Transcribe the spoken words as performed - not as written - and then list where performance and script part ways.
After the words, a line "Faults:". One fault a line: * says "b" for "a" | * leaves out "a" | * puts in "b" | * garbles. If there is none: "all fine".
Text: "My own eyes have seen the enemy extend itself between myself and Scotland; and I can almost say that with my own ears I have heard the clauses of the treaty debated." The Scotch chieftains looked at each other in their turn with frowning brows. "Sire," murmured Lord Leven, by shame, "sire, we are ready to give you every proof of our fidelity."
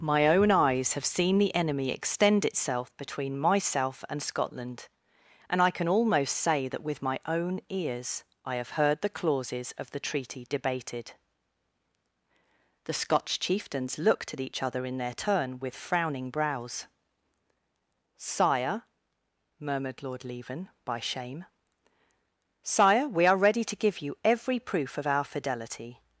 "My own eyes have seen the enemy extend itself between myself and Scotland; and I can almost say that with my own ears I have heard the clauses of the treaty debated." The Scotch chieftains looked at each other in their turn with frowning brows. "Sire," murmured Lord Leven, by shame, "sire, we are ready to give you every proof of our fidelity."
Faults:
all fine